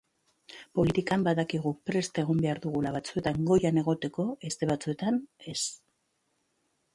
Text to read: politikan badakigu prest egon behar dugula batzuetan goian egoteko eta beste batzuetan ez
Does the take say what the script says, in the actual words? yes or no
no